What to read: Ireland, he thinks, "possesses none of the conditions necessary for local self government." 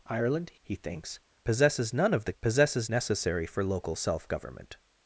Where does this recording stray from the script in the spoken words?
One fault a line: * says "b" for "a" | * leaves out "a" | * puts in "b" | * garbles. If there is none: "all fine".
* says "possesses" for "conditions"